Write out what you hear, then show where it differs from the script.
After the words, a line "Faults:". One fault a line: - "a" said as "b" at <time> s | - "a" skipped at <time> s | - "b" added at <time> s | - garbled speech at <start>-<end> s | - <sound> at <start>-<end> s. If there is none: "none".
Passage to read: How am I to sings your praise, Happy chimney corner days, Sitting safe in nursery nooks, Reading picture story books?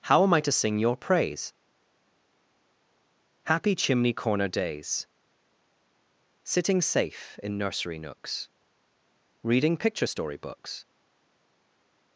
How am I to sing your praise, Happy chimney corner days, Sitting safe in nursery nooks, Reading picture story books?
Faults:
- "sings" said as "sing" at 0.5 s